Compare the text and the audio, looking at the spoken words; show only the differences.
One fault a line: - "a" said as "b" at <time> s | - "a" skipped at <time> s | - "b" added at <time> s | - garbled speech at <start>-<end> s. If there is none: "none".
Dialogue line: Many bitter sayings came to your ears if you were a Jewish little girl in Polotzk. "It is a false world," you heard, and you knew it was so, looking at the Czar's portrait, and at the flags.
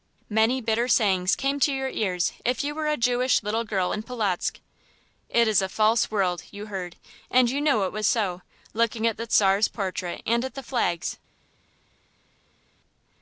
none